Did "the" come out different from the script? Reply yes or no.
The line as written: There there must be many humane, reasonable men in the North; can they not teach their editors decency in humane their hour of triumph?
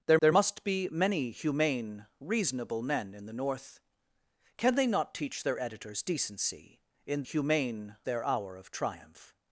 no